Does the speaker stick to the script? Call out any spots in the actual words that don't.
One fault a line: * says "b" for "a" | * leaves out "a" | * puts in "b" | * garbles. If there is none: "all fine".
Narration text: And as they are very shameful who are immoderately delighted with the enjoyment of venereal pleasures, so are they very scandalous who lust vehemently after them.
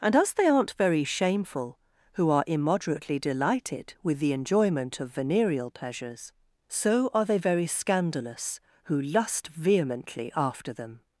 * says "aren't" for "are"